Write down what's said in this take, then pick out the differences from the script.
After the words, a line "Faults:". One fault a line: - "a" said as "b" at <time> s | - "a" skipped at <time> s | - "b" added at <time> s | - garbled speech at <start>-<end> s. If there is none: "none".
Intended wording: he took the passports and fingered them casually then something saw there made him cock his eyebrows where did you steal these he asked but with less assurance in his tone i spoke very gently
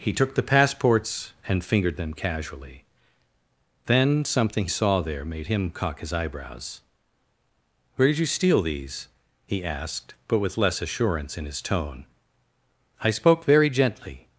he took the passports and fingered them casually then something saw there made him cock his eyebrows where did you steal these he asked but with less assurance in his tone i spoke very gently
Faults:
none